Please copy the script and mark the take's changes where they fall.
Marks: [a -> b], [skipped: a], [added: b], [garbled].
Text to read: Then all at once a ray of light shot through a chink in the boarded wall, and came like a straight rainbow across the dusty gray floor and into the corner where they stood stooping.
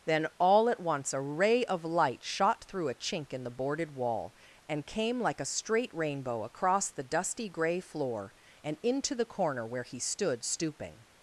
Then all at once a ray of light shot through a chink in the boarded wall, and came like a straight rainbow across the dusty gray floor and into the corner where [they -> he] stood stooping.